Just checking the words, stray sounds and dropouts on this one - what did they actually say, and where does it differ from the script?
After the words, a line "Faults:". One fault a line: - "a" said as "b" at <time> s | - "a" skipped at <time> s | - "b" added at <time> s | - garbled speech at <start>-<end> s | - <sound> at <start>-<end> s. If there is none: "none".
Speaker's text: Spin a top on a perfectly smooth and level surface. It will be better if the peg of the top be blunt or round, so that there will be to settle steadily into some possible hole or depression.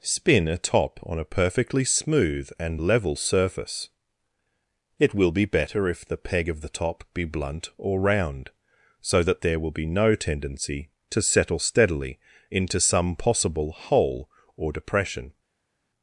Spin a top on a perfectly smooth and level surface. It will be better if the peg of the top be blunt or round, so that there will be no tendency to settle steadily into some possible hole or depression.
Faults:
- "no tendency" added at 9.9 s